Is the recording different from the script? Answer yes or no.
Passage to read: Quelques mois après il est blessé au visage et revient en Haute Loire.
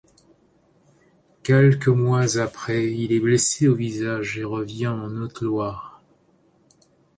no